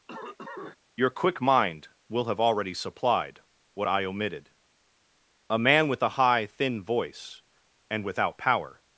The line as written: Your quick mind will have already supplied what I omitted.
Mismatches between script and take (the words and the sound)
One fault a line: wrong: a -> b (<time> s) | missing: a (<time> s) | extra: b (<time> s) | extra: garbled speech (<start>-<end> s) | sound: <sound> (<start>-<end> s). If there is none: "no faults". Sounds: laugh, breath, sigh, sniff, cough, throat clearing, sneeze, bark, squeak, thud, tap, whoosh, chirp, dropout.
sound: cough (0.1-0.8 s)
extra: A man with a high thin voice and without power (5.5 s)